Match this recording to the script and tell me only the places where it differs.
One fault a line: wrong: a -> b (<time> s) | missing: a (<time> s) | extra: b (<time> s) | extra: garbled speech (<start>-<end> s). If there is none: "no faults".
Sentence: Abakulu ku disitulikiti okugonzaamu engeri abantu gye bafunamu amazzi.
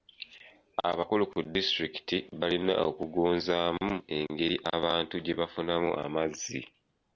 extra: balina (2.4 s)